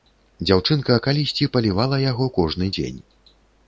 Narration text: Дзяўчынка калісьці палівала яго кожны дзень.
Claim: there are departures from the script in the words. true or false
false